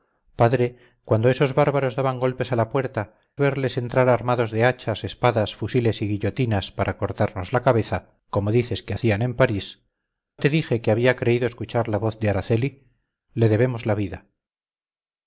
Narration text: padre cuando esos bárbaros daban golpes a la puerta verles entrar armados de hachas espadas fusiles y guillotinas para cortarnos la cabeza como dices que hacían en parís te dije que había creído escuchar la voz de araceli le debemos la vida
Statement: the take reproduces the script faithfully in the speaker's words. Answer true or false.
true